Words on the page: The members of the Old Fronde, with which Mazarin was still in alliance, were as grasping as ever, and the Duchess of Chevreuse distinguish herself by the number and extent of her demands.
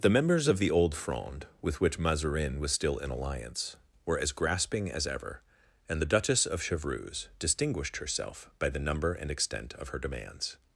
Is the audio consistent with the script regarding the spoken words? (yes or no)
no